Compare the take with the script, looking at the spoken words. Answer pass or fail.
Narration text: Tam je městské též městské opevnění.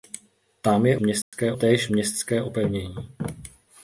pass